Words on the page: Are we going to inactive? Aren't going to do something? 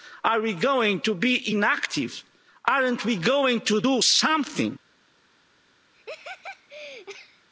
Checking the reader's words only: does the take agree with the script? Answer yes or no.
no